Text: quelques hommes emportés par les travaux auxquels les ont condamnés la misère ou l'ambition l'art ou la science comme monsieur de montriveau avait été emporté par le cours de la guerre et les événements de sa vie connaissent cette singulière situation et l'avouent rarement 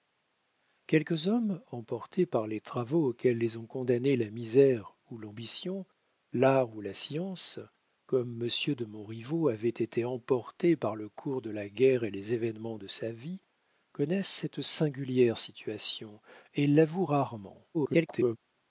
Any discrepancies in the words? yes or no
yes